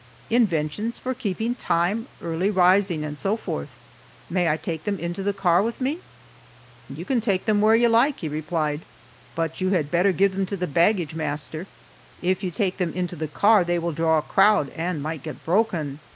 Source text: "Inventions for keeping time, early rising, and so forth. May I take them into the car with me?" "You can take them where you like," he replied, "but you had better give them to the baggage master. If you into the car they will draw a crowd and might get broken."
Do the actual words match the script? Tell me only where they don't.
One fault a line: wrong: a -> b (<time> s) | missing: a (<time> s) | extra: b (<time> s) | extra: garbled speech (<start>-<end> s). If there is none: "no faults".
extra: take them (12.5 s)